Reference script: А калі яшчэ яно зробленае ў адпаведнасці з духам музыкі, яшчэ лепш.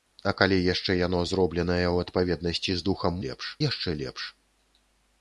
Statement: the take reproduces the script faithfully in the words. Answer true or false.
false